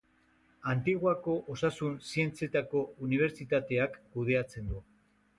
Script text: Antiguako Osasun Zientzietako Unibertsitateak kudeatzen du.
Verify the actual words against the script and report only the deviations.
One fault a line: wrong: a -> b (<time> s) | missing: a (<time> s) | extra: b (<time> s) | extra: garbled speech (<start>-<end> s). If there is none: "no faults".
no faults